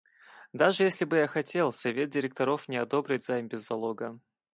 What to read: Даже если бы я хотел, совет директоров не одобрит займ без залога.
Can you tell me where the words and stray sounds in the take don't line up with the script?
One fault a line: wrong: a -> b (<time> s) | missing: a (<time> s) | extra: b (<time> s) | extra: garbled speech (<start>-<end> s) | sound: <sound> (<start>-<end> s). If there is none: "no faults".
no faults